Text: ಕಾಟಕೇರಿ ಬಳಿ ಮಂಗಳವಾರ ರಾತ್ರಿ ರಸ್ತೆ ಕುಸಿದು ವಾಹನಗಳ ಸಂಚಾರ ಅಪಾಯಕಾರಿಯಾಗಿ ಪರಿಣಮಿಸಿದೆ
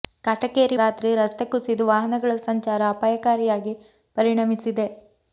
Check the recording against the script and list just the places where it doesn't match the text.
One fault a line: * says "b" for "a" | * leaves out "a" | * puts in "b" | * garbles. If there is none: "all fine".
* leaves out "ಬಳಿ ಮಂಗಳವಾರ"